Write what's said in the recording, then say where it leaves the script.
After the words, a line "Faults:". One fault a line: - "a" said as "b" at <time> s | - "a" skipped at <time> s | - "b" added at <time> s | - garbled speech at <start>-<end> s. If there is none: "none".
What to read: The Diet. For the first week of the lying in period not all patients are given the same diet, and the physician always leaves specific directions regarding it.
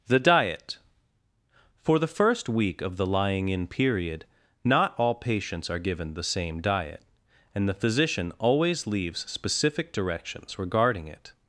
The Diet. For the first week of the lying in period not all patients are given the same diet, and the physician always leaves specific directions regarding it.
Faults:
none